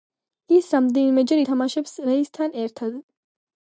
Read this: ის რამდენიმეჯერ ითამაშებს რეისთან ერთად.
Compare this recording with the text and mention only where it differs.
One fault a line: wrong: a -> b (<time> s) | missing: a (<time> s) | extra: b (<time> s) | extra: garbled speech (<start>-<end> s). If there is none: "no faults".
no faults